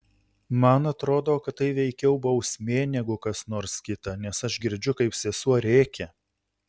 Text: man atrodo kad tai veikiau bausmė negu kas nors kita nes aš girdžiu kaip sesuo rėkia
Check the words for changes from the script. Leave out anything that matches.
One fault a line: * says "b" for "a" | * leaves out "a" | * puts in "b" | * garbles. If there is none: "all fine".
all fine